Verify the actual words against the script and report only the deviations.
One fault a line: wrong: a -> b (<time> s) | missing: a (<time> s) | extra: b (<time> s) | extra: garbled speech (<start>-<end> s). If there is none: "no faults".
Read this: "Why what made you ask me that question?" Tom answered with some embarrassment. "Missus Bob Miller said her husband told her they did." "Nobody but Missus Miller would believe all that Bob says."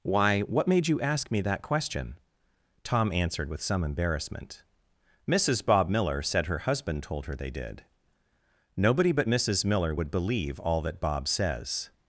no faults